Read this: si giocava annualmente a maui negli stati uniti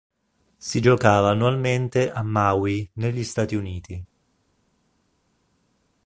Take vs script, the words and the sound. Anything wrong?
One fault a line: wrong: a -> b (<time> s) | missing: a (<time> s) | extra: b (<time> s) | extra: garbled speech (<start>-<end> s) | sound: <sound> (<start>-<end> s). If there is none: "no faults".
no faults